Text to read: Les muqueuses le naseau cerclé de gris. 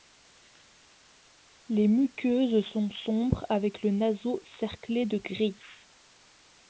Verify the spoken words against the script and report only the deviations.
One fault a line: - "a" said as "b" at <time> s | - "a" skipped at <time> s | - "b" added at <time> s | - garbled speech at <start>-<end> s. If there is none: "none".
- "sont sombres avec" added at 2.7 s